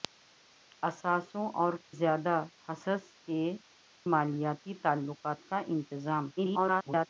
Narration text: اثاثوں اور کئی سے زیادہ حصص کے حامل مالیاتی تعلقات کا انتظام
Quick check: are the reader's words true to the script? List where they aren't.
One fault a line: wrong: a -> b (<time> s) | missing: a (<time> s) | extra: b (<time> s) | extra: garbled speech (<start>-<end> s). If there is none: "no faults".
missing: کئی سے (1.7 s)
missing: حامل (3.4 s)
extra: garbled speech (6.4-7.1 s)